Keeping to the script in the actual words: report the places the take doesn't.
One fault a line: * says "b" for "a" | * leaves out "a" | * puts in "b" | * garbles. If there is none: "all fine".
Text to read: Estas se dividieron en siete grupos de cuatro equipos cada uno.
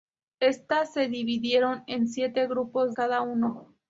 * leaves out "de cuatro equipos"